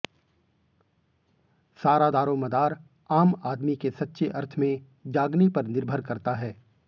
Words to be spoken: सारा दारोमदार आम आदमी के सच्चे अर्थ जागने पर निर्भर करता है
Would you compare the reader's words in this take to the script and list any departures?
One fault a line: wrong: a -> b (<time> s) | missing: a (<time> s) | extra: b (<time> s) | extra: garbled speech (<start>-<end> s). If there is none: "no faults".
extra: में (4.6 s)